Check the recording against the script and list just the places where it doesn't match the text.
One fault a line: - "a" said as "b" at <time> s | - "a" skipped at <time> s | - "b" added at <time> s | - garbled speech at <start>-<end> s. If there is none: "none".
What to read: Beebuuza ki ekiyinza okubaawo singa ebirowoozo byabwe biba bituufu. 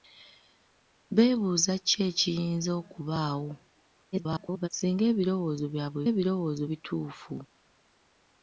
- garbled speech at 4.1-4.7 s
- "biba" said as "ebirowoozo" at 6.1 s